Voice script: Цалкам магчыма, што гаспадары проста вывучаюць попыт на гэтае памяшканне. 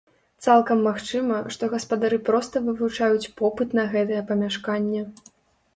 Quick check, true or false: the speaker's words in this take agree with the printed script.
true